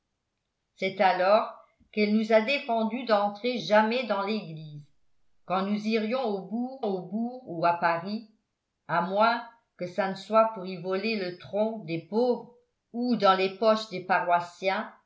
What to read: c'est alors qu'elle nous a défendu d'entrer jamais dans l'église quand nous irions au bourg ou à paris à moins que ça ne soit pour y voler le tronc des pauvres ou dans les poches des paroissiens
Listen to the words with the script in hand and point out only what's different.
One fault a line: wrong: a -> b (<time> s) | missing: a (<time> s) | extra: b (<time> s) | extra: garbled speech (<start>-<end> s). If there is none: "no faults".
extra: au bourg (6.8 s)